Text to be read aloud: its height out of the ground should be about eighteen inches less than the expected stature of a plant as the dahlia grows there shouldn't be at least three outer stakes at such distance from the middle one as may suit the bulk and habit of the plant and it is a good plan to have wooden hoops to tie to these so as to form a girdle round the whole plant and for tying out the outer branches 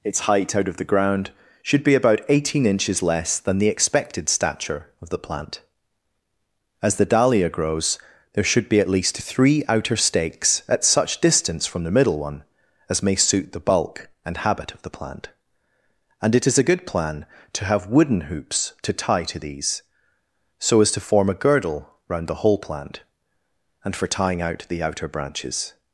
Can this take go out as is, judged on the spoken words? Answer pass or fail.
fail